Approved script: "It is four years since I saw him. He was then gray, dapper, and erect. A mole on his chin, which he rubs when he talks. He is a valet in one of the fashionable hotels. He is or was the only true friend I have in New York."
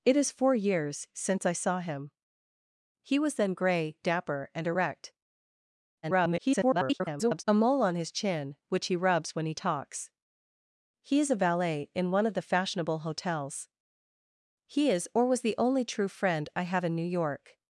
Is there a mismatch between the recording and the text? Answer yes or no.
yes